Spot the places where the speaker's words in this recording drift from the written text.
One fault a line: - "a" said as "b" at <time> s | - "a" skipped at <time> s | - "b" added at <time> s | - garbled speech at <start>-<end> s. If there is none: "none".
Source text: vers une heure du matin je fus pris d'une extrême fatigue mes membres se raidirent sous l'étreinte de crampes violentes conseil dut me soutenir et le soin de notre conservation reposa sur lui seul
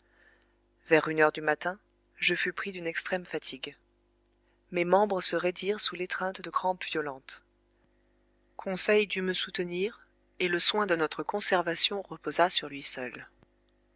none